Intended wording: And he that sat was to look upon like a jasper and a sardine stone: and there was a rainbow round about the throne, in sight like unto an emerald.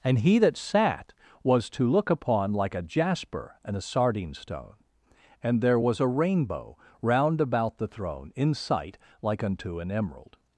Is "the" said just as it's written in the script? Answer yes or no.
yes